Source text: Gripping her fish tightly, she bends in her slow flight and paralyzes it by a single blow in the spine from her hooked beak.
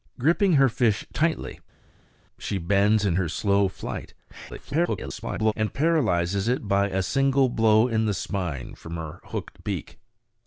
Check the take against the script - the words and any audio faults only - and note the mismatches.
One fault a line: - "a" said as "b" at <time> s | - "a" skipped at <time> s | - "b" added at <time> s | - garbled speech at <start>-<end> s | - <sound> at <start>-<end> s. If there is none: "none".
- garbled speech at 4.5-5.5 s